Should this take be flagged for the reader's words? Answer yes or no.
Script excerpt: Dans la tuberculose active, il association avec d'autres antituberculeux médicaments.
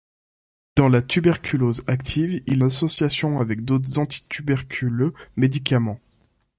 no